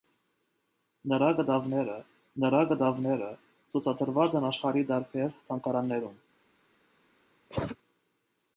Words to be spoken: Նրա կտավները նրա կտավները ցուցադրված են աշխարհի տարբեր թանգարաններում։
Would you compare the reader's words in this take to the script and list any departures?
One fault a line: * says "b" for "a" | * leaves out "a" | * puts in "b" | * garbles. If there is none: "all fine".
all fine